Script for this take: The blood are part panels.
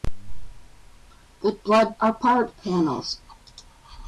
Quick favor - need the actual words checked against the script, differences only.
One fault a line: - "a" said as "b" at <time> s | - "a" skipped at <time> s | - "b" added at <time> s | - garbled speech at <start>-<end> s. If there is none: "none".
none